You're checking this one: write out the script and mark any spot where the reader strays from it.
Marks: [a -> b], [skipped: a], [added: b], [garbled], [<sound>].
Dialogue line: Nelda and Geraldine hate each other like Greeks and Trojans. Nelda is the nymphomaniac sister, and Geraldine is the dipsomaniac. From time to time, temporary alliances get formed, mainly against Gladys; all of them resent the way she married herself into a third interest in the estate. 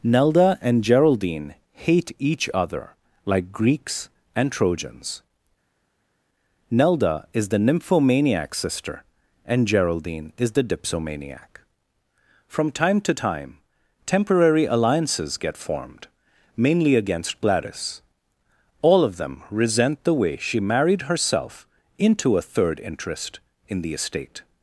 Nelda and Geraldine hate each other like Greeks and Trojans. Nelda is the nymphomaniac sister, and Geraldine is the dipsomaniac. From time to time, temporary alliances get formed, mainly against Gladys; all of them resent the way she married herself into a third interest in the estate.